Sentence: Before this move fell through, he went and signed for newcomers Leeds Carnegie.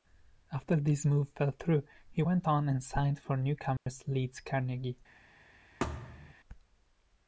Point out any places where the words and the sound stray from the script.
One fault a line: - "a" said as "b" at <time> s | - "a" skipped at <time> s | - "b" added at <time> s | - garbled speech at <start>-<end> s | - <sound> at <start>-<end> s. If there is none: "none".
- "Before" said as "After" at 0.5 s
- "on" added at 2.5 s
- dropout at 3.8-3.9 s
- thud at 5.8-6.3 s